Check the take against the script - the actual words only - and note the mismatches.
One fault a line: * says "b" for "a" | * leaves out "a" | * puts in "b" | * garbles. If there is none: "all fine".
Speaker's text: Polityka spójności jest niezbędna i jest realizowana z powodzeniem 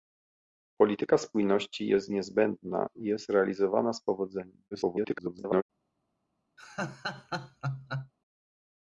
* garbles